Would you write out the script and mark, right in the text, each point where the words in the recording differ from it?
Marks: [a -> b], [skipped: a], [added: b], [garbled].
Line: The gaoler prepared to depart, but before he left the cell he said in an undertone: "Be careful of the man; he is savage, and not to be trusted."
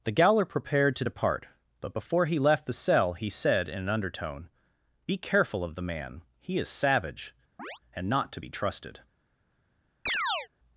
The gaoler prepared to depart, but before he left the cell he said in an undertone: "Be careful of the man; he is savage, and not to be trusted."